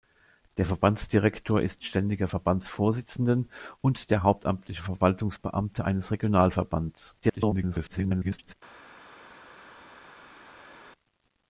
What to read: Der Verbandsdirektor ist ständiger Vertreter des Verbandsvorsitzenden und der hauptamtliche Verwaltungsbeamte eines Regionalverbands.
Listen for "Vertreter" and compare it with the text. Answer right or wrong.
wrong